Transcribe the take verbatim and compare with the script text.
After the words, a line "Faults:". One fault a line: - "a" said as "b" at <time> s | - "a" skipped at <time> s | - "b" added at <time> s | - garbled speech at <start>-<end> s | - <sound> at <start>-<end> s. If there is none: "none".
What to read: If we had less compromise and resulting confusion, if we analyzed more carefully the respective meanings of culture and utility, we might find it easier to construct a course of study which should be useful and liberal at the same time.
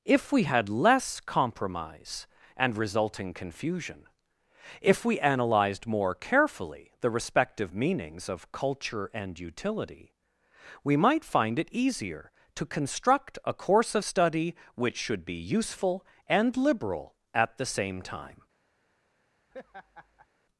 If we had less compromise and resulting confusion, if we analyzed more carefully the respective meanings of culture and utility, we might find it easier to construct a course of study which should be useful and liberal at the same time.
Faults:
- laugh at 19.5-20.3 s